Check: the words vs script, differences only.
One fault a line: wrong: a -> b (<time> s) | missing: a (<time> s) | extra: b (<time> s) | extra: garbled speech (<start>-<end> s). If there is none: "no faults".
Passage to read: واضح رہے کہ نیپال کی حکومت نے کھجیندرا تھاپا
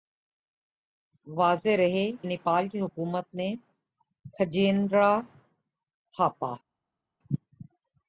missing: کہ (2.0 s)